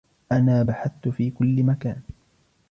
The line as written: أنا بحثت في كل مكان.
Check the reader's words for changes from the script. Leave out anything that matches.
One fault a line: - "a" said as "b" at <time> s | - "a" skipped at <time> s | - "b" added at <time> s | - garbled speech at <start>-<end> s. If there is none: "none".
none